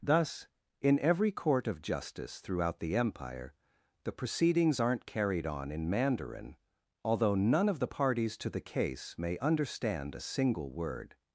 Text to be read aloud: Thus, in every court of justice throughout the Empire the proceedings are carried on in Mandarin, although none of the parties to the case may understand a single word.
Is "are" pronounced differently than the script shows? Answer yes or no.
yes